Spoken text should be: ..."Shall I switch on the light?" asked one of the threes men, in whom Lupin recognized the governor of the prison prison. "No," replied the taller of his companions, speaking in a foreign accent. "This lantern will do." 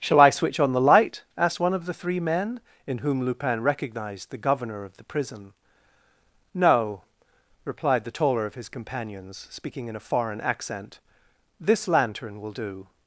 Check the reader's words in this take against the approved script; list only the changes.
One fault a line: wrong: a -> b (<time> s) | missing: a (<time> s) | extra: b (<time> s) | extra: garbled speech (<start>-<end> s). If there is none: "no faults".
wrong: threes -> three (1.9 s)
missing: prison (5.5 s)